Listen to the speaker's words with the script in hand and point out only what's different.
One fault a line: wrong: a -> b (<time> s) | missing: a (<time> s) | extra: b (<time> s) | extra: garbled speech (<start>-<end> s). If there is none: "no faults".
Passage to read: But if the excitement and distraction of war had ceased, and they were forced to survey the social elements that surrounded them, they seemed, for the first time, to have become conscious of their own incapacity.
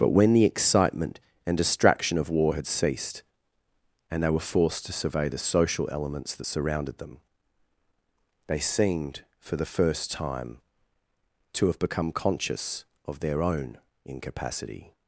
wrong: if -> when (0.2 s)